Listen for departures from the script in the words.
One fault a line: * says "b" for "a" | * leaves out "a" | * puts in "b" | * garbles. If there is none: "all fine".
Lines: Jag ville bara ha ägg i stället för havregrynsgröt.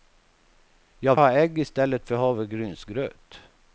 * leaves out "ville bara"